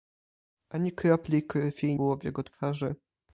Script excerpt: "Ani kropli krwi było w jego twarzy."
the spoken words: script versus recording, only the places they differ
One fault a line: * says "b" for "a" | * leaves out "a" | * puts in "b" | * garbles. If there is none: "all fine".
all fine